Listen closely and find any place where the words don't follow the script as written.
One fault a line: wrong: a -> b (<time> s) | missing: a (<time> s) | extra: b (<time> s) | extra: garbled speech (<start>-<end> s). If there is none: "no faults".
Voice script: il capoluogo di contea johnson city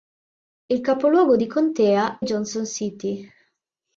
no faults